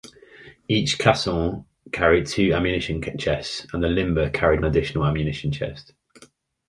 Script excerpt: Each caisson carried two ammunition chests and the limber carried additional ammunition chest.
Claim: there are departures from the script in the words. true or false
false